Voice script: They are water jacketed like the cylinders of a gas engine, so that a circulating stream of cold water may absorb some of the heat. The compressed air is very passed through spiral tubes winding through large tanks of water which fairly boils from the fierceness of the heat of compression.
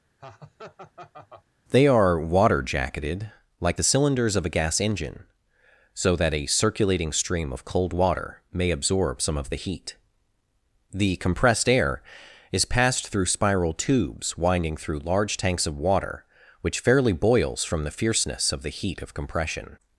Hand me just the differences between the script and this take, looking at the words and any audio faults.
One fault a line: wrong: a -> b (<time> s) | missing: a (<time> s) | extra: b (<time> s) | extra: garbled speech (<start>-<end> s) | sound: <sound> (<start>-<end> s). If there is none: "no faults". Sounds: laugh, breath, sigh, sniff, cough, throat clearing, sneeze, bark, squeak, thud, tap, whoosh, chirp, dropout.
sound: laugh (0.2-1.5 s)
missing: very (12.6 s)